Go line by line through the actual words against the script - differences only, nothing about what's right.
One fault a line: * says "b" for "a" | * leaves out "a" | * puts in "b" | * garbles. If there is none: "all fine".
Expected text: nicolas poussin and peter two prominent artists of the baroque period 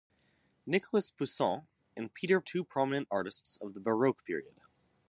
all fine